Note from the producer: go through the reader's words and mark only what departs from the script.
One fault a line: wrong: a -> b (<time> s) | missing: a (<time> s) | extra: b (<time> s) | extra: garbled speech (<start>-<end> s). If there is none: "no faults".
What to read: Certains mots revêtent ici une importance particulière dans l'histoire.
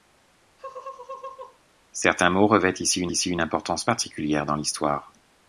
extra: ici une (3.1 s)